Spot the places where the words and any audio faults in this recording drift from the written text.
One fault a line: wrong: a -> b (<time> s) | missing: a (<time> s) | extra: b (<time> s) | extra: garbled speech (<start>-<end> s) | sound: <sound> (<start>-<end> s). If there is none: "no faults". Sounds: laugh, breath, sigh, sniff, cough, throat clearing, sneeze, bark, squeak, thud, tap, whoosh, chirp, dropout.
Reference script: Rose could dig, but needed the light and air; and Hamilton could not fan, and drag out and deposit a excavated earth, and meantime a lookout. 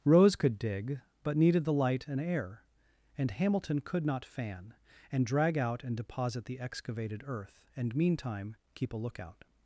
wrong: a -> the (6.5 s)
extra: keep (8.7 s)